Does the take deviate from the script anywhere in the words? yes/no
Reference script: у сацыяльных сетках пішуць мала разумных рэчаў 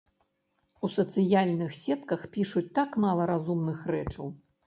yes